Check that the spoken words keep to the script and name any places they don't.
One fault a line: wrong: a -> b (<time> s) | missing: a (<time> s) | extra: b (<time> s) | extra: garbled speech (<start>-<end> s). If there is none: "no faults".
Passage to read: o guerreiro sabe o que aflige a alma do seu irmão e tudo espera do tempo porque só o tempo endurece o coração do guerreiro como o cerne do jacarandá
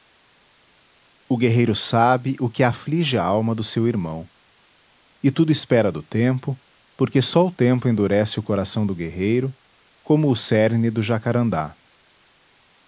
no faults